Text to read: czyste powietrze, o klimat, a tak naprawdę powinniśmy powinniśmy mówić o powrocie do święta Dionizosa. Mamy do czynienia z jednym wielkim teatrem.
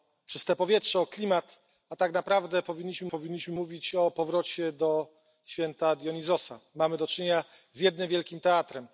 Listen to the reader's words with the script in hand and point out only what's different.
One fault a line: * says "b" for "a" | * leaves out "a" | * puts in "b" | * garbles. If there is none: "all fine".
all fine